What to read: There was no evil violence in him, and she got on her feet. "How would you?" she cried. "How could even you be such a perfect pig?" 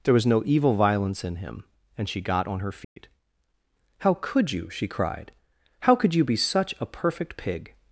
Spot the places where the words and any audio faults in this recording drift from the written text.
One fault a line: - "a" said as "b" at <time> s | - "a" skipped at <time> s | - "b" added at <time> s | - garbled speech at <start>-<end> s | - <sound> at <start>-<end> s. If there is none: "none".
- dropout at 2.8-3.0 s
- "would" said as "could" at 4.1 s
- "even" skipped at 6.1 s